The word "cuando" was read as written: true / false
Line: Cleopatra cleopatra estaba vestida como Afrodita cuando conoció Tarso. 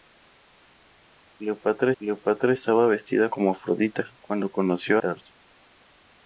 true